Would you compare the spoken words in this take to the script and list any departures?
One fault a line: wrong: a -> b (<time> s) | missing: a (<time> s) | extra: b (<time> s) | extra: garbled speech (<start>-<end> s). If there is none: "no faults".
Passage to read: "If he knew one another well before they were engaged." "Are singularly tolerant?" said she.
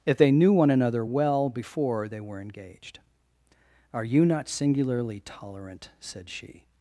wrong: he -> they (0.2 s)
extra: you not (4.0 s)